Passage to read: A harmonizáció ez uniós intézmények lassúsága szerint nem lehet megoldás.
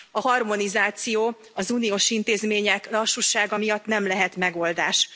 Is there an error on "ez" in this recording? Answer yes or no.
yes